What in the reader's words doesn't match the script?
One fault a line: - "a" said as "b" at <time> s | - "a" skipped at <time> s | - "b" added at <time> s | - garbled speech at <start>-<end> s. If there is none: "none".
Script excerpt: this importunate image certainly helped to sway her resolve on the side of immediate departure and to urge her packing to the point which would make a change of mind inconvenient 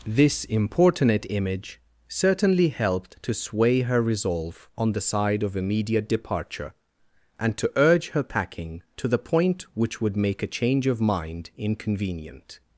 none